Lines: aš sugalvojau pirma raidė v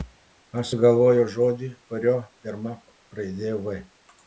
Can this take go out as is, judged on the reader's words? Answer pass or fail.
fail